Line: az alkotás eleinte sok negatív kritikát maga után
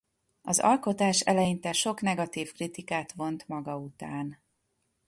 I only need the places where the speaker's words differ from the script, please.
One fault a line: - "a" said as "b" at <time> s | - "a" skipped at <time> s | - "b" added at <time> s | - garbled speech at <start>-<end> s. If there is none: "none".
- "vont" added at 3.1 s